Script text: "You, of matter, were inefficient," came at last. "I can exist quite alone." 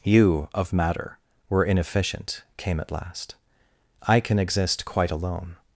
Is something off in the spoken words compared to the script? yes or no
no